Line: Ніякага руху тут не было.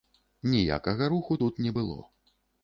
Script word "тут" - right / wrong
right